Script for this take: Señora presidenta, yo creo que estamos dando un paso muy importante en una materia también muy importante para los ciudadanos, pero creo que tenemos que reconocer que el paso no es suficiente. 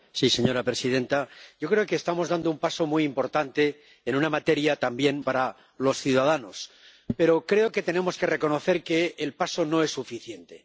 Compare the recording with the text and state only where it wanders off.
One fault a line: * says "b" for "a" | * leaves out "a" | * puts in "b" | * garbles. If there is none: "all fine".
* leaves out "muy importante"